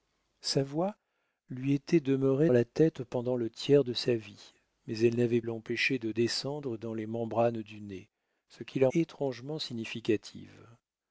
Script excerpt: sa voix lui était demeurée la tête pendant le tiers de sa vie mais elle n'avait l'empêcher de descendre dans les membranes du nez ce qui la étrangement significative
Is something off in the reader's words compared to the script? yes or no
no